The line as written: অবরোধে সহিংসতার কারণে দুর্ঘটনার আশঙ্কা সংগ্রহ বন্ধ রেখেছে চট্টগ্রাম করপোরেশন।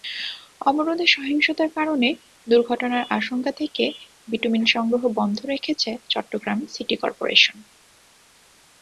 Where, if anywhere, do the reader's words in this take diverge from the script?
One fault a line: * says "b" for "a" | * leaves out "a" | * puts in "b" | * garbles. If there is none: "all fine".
* puts in "থেকে বিটুমিন"
* puts in "সিটি"